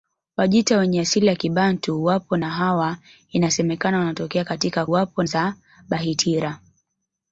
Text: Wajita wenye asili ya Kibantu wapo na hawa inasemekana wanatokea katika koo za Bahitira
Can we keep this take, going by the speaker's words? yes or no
no